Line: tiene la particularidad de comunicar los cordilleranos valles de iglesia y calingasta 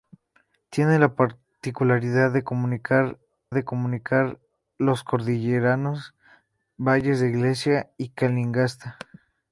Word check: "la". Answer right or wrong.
right